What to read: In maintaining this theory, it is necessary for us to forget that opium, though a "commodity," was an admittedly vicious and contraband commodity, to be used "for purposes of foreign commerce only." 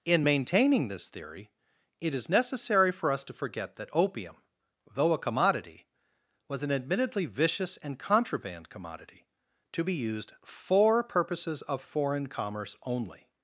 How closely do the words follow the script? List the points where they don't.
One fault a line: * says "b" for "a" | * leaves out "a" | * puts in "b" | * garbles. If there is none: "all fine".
all fine